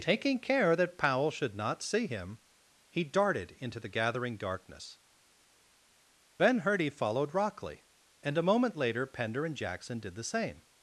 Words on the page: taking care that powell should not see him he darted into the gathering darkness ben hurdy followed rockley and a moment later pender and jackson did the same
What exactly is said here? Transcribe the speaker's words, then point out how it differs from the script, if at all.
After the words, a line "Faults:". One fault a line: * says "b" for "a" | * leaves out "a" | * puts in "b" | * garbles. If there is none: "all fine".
taking care that powell should not see him he darted into the gathering darkness ben hurdy followed rockley and a moment later pender and jackson did the same
Faults:
all fine